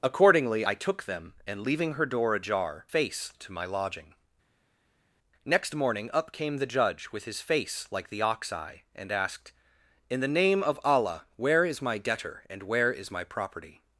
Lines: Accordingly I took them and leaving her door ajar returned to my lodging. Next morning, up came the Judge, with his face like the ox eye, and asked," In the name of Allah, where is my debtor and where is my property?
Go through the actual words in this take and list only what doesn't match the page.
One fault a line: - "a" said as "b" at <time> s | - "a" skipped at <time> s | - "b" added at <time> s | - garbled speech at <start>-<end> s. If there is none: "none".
- "returned" said as "face" at 2.9 s